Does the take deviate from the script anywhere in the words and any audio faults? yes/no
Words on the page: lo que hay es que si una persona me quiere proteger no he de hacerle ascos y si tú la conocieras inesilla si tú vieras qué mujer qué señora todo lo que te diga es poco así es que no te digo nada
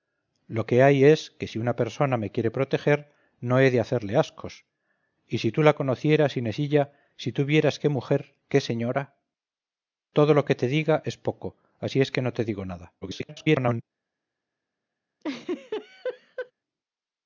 yes